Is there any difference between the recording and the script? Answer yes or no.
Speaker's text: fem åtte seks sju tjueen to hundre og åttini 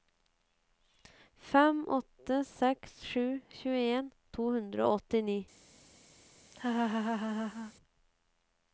no